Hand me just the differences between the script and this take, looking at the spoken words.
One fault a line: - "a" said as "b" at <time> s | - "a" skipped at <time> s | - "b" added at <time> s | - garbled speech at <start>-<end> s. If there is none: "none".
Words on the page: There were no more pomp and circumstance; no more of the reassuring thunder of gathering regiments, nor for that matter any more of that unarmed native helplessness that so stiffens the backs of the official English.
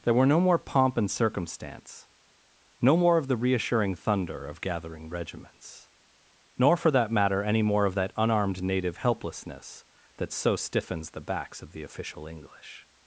none